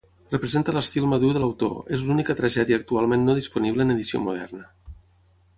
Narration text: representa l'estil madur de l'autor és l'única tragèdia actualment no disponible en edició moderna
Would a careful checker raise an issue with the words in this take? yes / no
no